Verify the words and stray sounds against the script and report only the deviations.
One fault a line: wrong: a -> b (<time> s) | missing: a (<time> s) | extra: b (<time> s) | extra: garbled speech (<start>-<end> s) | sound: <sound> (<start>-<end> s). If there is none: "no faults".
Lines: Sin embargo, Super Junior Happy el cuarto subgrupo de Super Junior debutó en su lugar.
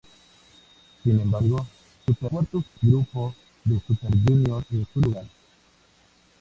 missing: Junior Happy el (2.3 s)
sound: dropout (2.7-2.8 s)
missing: debutó (4.6 s)